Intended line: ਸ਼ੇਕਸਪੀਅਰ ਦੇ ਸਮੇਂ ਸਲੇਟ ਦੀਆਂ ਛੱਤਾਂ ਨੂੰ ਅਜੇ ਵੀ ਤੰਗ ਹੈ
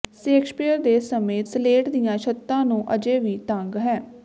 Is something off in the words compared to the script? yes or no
no